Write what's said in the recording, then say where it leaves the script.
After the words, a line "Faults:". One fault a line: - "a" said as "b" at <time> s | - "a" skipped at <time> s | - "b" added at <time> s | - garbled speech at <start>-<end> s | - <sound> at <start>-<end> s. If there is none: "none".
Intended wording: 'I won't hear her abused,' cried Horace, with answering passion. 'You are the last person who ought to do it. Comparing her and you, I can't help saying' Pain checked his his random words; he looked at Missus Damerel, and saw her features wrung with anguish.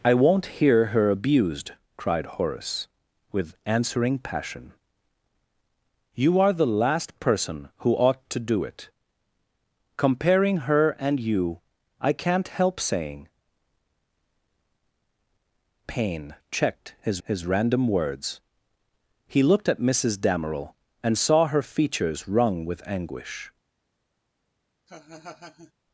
'I won't hear her abused,' cried Horace, with answering passion. 'You are the last person who ought to do it. Comparing her and you, I can't help saying' Pain checked his his random words; he looked at Missus Damerel, and saw her features wrung with anguish.
Faults:
- laugh at 24.9-25.7 s